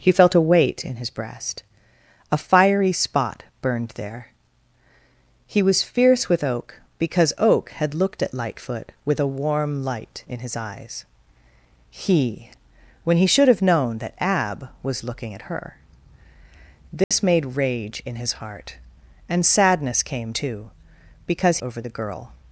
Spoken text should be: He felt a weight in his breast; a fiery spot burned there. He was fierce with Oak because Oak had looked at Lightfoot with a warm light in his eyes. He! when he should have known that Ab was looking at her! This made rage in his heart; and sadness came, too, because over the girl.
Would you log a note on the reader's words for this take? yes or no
no